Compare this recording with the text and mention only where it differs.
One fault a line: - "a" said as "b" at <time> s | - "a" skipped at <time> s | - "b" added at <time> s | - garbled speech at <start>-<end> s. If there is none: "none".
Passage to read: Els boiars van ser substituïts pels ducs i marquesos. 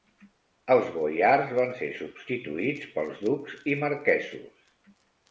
none